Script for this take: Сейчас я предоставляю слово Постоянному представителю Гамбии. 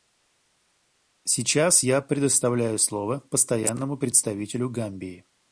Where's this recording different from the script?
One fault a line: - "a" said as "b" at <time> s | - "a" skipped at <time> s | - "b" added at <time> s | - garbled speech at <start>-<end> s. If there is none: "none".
none